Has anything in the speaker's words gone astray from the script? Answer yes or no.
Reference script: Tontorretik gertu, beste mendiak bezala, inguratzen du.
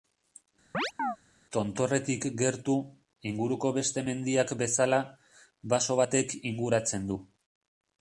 yes